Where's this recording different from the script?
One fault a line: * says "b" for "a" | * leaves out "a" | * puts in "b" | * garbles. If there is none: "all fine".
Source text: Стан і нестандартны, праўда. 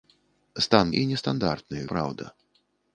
all fine